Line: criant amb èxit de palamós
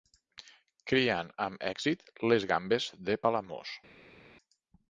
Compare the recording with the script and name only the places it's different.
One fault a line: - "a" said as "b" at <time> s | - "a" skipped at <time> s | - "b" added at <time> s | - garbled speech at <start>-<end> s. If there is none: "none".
- "les gambes" added at 2.3 s